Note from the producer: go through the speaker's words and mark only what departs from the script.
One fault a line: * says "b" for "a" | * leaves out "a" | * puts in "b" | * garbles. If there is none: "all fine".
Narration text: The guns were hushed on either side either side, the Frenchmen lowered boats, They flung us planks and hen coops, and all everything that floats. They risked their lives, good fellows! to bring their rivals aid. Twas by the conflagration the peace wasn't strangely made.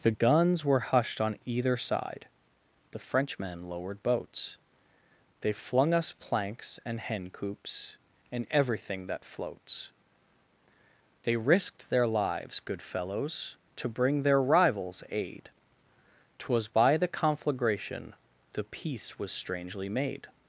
* leaves out "either side"
* leaves out "all"
* says "was" for "wasn't"